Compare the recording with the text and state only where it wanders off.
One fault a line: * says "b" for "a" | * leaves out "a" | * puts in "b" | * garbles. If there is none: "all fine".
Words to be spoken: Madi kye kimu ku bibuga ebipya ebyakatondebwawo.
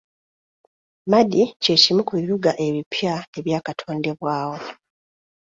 all fine